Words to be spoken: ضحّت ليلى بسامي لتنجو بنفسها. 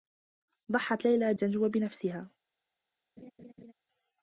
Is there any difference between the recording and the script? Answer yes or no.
yes